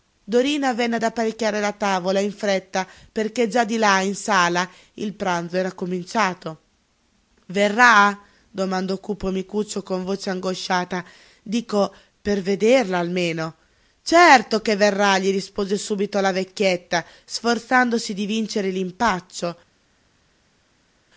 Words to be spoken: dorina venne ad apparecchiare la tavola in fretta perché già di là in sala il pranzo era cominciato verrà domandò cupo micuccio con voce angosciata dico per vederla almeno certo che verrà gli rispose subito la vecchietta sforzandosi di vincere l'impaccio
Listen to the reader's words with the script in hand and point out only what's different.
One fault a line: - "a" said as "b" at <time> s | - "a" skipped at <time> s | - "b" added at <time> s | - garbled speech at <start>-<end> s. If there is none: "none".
none